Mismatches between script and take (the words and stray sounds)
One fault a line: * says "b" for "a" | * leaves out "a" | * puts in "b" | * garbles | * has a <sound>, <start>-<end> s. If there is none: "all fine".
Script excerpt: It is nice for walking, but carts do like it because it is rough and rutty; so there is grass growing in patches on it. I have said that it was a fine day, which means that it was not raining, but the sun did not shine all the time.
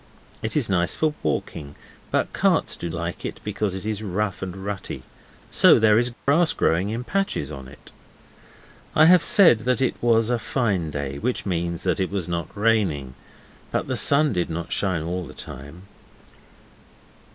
* has a dropout, 6.1-6.3 s